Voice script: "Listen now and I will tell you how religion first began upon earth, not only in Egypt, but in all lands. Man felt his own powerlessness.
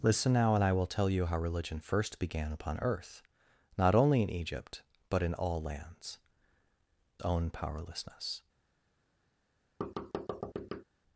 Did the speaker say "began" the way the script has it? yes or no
yes